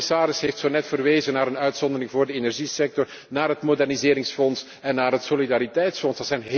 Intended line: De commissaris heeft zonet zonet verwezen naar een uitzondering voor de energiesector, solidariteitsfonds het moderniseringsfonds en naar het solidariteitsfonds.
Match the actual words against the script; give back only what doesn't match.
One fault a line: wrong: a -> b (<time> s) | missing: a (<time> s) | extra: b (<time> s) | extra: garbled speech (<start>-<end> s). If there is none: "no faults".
missing: zonet (0.9 s)
wrong: solidariteitsfonds -> naar (3.3 s)